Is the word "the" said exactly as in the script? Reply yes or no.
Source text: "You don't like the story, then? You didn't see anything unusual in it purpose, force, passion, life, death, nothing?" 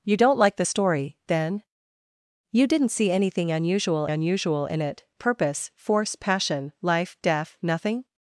yes